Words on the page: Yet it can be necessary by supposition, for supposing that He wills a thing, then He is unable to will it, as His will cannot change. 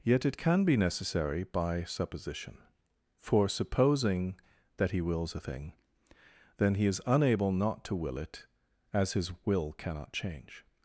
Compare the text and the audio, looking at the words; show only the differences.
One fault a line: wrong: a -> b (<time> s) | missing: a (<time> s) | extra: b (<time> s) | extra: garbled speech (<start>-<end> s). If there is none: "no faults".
extra: not (7.5 s)